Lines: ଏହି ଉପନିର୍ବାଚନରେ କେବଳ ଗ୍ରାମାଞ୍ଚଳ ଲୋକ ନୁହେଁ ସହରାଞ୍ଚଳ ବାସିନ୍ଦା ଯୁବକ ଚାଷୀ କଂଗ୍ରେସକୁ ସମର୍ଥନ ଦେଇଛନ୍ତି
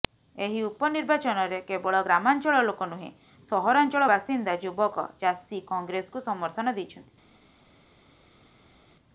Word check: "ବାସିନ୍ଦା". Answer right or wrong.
right